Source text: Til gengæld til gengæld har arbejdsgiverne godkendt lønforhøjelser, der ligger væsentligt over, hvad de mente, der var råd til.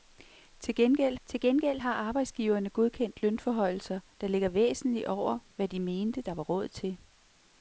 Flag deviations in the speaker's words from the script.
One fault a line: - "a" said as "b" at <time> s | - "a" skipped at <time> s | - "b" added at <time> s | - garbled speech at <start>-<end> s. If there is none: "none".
none